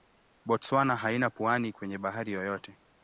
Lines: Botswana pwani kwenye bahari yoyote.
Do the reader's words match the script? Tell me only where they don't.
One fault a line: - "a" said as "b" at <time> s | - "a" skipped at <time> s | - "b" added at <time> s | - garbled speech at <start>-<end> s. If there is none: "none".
- "haina" added at 0.9 s